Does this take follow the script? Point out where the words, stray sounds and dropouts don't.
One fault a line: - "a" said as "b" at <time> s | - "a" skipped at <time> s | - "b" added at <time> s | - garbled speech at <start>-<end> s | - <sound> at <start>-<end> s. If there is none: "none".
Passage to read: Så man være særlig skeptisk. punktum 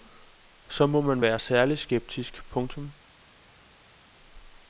- "må" added at 0.9 s